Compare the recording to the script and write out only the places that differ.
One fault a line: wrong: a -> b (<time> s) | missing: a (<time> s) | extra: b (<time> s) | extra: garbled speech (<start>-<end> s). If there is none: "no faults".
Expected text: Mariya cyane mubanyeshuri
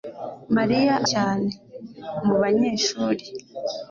no faults